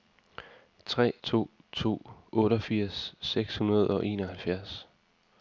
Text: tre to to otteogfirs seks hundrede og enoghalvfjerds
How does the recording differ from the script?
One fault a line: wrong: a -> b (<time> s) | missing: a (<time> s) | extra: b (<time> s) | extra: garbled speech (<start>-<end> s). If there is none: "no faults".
no faults